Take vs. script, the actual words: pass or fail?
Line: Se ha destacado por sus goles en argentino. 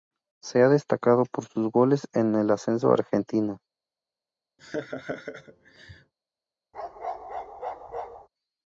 fail